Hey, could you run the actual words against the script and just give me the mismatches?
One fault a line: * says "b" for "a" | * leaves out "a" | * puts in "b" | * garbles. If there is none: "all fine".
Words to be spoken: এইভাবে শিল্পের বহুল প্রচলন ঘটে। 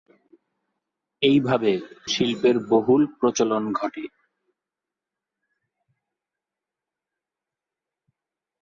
all fine